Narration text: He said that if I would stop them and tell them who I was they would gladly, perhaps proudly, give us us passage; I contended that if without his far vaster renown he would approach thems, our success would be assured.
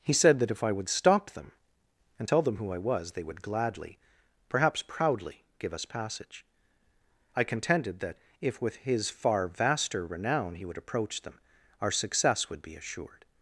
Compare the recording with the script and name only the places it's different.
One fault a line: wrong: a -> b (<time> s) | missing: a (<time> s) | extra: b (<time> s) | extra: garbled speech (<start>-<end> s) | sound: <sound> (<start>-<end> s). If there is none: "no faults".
missing: us (5.9 s)
wrong: without -> with (8.6 s)
wrong: thems -> them (11.2 s)